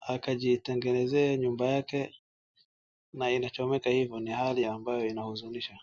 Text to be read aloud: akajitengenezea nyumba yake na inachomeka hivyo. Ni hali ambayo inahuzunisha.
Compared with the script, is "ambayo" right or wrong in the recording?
right